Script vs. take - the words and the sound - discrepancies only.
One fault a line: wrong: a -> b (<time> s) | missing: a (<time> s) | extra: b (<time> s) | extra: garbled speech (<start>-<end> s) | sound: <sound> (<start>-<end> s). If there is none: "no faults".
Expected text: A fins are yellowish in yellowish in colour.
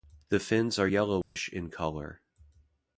wrong: A -> The (0.3 s)
sound: dropout (1.2-1.4 s)
missing: yellowish in (1.7 s)